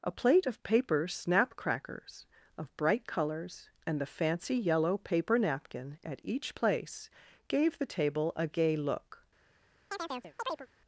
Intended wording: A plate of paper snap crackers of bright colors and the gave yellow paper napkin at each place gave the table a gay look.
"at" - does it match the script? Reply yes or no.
yes